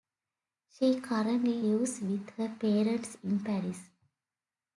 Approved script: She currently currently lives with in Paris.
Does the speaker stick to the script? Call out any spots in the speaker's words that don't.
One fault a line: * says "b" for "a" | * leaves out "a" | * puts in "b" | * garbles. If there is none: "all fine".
* leaves out "currently"
* puts in "her parents"